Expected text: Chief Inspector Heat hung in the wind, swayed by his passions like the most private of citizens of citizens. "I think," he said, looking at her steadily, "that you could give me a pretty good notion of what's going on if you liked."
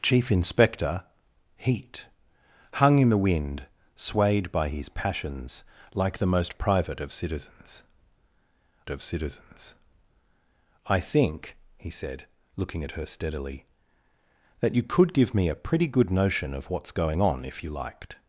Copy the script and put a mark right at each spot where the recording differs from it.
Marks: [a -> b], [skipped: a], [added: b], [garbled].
Chief Inspector Heat hung in the wind, swayed by his passions like the most private of citizens of citizens. "I think," he said, looking at her steadily, "that you could give me a pretty good notion of what's going on if you liked."